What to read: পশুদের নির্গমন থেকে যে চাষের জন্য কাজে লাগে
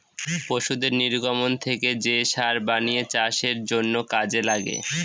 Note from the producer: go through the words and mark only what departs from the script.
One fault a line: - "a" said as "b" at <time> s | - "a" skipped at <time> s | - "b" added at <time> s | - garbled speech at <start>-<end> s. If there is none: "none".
- "সার বানিয়ে" added at 2.2 s